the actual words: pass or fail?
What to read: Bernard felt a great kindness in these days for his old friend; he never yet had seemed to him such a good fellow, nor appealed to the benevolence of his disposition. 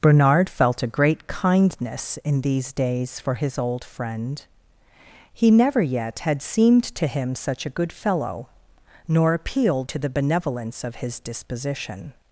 pass